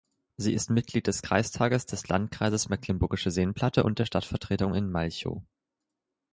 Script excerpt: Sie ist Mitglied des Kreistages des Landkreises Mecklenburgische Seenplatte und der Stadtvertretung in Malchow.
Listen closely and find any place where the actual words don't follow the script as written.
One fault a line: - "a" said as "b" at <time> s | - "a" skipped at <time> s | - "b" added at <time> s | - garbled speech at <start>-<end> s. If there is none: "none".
none